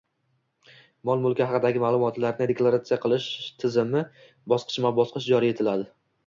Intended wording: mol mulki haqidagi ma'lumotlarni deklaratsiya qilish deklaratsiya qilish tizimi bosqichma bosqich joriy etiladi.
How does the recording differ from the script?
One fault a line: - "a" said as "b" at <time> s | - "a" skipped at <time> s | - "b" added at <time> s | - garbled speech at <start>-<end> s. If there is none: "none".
- "deklaratsiya qilish" skipped at 3.3 s